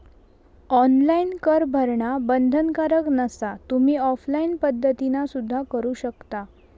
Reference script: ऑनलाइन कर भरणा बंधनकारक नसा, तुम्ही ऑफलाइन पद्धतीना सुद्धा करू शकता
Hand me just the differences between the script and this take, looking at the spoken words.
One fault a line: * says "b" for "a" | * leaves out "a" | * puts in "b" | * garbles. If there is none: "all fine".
all fine